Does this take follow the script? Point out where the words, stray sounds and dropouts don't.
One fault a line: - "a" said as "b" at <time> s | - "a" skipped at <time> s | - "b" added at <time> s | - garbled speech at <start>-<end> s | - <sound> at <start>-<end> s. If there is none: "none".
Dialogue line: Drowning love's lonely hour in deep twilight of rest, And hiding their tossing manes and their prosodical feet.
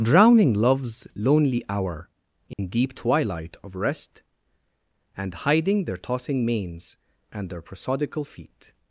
- dropout at 2.5-2.6 s